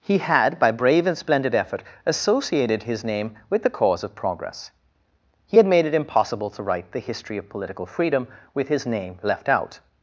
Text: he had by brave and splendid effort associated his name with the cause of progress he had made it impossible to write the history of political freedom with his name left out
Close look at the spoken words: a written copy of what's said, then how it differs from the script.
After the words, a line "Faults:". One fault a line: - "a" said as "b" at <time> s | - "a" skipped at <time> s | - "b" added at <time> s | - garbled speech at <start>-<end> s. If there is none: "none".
he had by brave and splendid effort associated his name with the cause of progress he had made it impossible to write the history of political freedom with his name left out
Faults:
none